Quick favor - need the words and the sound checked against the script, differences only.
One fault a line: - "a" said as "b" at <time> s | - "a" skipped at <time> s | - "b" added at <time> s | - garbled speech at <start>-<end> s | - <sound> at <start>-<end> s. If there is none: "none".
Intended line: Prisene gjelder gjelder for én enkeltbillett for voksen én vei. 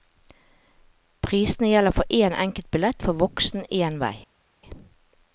- "gjelder" skipped at 1.9 s